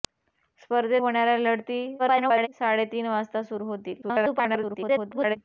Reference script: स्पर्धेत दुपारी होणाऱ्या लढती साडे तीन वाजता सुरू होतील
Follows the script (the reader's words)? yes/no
no